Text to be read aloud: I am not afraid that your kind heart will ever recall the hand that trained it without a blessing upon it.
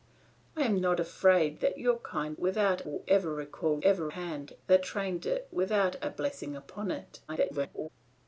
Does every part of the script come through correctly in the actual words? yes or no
no